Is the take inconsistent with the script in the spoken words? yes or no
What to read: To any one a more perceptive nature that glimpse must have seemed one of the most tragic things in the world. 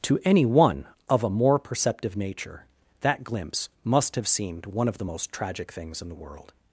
yes